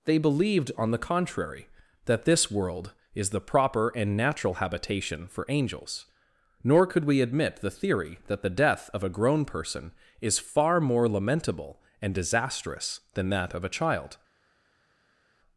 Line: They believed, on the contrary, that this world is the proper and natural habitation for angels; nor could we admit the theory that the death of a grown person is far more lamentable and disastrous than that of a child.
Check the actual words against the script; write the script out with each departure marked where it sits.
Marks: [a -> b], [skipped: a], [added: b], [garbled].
They believed, on the contrary, that this world is the proper and natural habitation for angels; nor could we admit the theory that the death of a grown person is far more lamentable and disastrous than that of a child.